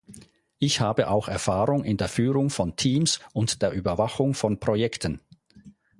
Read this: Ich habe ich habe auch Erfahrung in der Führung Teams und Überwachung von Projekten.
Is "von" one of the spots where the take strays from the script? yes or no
no